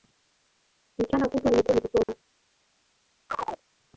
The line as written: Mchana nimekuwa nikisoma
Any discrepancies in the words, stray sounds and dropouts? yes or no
yes